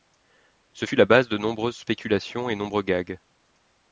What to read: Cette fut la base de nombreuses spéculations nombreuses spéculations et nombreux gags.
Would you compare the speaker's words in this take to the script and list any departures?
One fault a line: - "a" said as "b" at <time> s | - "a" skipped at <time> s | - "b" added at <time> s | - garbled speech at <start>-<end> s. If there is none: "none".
- "Cette" said as "Ce" at 0.7 s
- "nombreuses spéculations" skipped at 2.5 s